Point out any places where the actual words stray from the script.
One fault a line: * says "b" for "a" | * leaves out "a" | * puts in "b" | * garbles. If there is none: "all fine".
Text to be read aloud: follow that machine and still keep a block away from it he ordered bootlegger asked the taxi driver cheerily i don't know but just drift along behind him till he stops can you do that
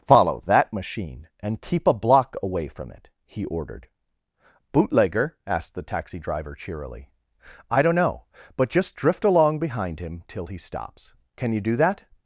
* leaves out "still"